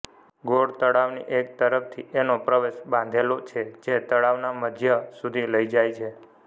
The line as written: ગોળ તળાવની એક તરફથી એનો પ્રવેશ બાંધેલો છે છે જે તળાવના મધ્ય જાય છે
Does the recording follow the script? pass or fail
fail